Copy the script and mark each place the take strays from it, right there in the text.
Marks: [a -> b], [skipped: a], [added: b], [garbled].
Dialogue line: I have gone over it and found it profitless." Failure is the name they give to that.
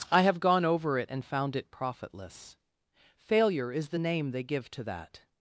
I have gone over it and found it profitless." Failure is the name they give to that.